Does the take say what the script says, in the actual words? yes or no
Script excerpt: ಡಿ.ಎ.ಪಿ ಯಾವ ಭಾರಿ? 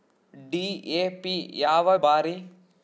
yes